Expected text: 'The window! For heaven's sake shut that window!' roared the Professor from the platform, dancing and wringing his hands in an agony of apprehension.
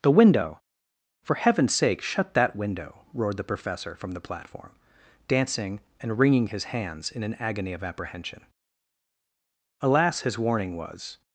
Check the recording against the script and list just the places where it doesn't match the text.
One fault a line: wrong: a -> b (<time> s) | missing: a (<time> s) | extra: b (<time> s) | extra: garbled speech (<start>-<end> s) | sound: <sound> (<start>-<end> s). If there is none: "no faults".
extra: Alas his warning was (9.8 s)